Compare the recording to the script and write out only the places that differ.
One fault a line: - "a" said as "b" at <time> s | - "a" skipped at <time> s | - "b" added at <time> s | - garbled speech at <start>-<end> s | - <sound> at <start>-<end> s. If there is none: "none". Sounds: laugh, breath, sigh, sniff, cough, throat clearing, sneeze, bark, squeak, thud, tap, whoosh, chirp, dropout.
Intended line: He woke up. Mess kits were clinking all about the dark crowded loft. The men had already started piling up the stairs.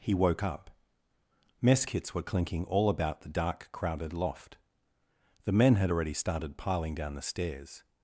- "up" said as "down" at 6.9 s